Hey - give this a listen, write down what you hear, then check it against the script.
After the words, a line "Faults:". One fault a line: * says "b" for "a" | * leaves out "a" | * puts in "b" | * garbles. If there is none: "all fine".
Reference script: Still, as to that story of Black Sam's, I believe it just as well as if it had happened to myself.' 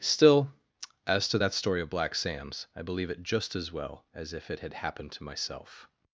Still, as to that story of Black Sam's, I believe it just as well as if it had happened to myself.'
Faults:
all fine